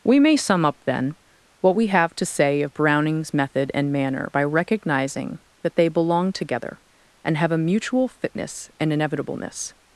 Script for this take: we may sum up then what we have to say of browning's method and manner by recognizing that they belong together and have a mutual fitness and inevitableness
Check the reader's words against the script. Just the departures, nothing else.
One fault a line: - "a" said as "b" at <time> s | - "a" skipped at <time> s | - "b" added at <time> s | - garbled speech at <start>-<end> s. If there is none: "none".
none